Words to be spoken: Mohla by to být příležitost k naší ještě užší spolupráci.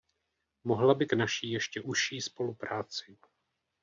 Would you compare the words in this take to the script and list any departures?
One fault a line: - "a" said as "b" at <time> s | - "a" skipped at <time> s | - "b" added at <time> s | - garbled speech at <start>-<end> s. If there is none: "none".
- "to být příležitost" skipped at 1.1 s